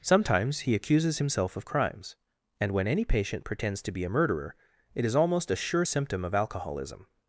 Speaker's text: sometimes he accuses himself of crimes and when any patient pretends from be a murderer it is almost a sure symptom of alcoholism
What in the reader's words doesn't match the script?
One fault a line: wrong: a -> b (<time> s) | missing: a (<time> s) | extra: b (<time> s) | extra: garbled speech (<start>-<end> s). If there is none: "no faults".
wrong: from -> to (3.8 s)